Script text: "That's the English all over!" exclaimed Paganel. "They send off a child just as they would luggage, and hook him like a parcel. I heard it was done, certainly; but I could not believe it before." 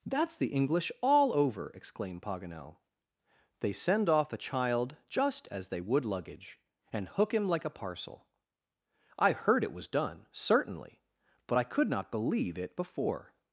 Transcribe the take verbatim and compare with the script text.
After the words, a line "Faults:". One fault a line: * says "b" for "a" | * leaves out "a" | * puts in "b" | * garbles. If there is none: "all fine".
"That's the English all over!" exclaimed Paganel. "They send off a child just as they would luggage, and hook him like a parcel. I heard it was done, certainly; but I could not believe it before."
Faults:
all fine